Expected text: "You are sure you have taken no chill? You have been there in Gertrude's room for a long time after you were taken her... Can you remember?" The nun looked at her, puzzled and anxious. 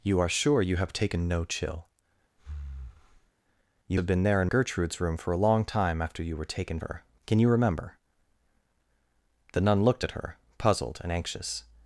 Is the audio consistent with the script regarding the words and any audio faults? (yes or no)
no